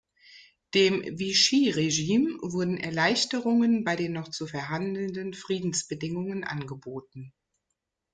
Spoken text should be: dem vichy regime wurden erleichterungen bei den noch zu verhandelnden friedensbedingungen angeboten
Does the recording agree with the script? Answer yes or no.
yes